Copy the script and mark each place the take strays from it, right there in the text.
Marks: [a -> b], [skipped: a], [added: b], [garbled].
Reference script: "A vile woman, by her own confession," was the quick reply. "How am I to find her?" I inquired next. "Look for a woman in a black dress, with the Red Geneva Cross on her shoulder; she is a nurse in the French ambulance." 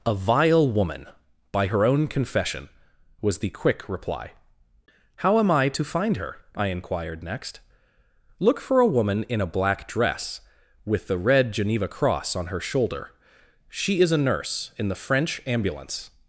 "A vile woman, by her own confession," was the quick reply. "How am I to find her?" I inquired next. "Look for a woman in a black dress, with the Red Geneva Cross on her shoulder; she is a nurse in the French ambulance."